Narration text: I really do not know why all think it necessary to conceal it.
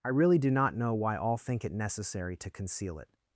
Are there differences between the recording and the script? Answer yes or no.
no